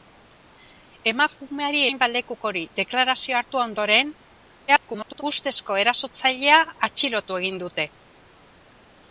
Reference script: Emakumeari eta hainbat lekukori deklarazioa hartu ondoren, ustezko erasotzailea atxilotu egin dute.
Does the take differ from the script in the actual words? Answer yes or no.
yes